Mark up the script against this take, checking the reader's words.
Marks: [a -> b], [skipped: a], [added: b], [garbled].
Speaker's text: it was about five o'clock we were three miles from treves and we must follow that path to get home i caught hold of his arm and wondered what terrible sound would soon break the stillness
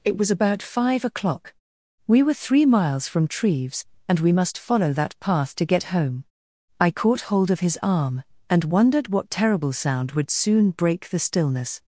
it was about five o'clock we were three miles from treves and we must follow that path to get home i caught hold of his arm and wondered what terrible sound would soon break the stillness